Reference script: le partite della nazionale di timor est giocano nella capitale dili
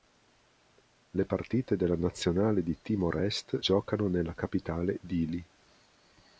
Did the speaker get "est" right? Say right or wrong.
right